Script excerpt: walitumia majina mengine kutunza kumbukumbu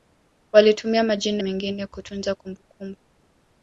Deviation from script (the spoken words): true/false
false